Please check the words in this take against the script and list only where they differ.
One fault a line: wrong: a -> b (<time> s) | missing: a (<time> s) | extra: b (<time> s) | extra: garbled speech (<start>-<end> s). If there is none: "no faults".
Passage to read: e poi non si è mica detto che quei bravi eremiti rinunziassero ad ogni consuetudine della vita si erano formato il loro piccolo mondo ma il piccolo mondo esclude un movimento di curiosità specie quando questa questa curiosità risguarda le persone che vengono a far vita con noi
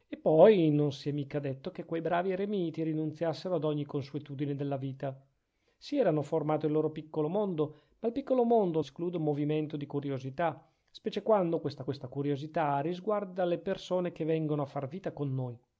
no faults